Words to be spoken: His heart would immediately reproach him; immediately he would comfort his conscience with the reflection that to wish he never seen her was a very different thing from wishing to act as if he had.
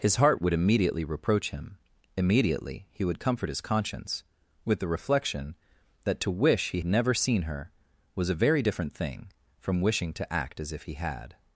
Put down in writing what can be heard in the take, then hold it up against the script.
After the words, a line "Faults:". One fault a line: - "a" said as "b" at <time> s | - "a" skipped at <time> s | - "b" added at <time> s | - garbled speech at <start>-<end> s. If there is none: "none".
His heart would immediately reproach him; immediately he would comfort his conscience with the reflection that to wish he never seen her was a very different thing from wishing to act as if he had.
Faults:
none